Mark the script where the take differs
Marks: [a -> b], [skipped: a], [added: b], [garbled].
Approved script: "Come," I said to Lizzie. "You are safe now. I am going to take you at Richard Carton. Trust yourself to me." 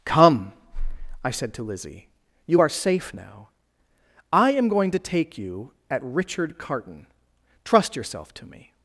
"Come," I said to Lizzie. "You are safe now. I am going to take you at Richard Carton. Trust yourself to me."